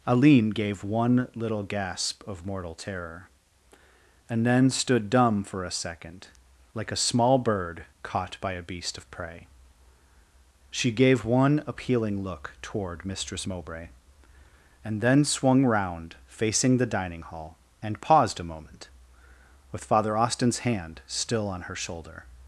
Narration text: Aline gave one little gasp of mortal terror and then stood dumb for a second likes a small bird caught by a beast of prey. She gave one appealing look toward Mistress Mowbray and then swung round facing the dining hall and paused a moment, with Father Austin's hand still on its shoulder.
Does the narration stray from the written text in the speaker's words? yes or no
yes